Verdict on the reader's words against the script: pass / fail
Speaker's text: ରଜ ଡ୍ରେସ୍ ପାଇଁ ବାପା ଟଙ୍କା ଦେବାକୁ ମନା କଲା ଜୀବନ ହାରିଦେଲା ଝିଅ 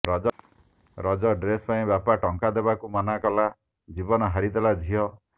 pass